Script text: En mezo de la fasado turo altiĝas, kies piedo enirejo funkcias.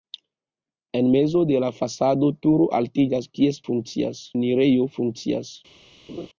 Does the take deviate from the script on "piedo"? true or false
true